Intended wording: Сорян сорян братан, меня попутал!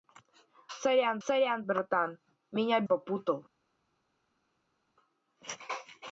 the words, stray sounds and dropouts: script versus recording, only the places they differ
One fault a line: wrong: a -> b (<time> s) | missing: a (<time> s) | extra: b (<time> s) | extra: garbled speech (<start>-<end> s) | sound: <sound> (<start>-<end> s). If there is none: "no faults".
no faults